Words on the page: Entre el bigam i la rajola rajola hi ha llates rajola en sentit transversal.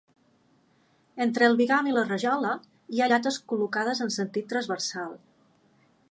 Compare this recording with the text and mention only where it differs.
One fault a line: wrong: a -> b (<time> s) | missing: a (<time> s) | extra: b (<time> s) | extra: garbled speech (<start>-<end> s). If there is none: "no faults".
missing: rajola (2.5 s)
wrong: rajola -> col·locades (3.5 s)